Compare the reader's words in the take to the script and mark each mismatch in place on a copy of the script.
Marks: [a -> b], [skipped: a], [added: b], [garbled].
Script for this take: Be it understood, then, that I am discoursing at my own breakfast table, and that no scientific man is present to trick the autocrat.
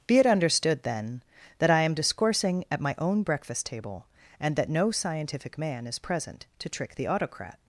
Be it understood, then, that I am discoursing at my own breakfast table, and that no scientific man is present to trick the autocrat.